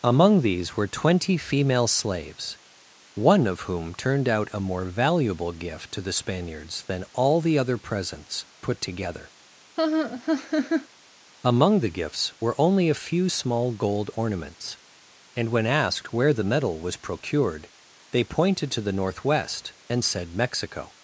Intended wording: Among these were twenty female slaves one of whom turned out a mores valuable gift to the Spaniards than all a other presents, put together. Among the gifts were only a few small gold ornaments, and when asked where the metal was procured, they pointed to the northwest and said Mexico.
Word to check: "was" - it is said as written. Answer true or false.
true